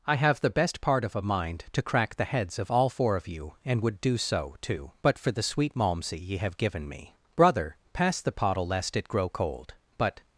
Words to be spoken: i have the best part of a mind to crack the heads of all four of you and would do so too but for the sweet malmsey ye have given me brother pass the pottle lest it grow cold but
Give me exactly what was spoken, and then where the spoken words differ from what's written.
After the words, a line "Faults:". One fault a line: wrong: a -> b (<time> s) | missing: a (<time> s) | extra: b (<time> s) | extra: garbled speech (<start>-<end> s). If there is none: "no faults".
i have the best part of a mind to crack the heads of all four of you and would do so too but for the sweet malmsey ye have given me brother pass the pottle lest it grow cold but
Faults:
no faults